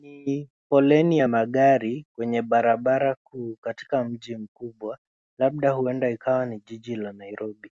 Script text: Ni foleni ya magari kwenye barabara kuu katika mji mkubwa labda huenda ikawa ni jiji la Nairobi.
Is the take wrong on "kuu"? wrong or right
right